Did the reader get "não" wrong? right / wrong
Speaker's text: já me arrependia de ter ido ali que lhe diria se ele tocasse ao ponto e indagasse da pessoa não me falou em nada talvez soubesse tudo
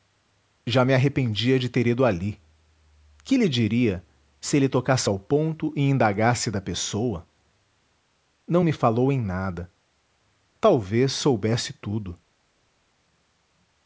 right